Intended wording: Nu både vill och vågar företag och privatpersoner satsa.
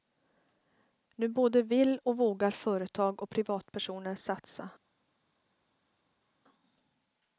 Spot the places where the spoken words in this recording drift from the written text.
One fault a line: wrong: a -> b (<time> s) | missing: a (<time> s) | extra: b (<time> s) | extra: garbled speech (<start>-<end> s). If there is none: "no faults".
no faults